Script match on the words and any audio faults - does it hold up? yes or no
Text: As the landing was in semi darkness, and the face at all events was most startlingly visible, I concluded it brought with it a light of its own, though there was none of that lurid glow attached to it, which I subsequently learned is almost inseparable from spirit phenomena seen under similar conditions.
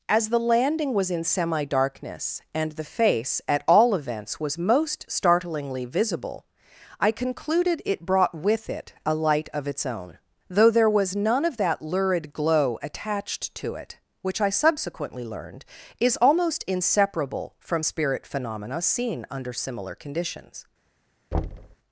no